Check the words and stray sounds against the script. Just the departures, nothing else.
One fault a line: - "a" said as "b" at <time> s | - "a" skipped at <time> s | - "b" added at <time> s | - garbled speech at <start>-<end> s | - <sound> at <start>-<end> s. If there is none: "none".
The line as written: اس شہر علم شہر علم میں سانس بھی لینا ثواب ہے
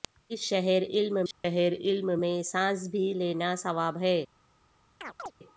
- dropout at 1.3-1.4 s
- chirp at 5.0-5.3 s